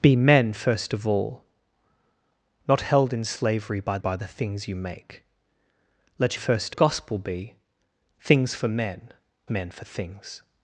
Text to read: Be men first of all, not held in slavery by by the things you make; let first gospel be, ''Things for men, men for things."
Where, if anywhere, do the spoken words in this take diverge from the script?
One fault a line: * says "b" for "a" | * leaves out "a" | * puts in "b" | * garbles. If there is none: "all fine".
all fine